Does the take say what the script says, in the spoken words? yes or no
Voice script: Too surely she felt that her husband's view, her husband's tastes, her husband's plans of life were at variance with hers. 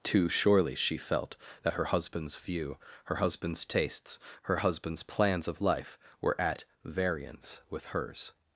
yes